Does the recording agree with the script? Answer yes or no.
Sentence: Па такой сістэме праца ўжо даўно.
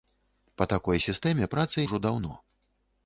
yes